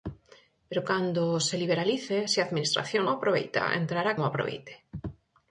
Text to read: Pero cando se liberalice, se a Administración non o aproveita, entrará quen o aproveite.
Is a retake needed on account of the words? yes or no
yes